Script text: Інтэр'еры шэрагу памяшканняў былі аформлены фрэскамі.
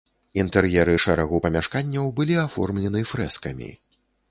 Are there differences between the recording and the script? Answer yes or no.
no